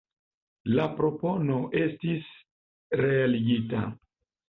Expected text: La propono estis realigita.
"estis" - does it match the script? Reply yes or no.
yes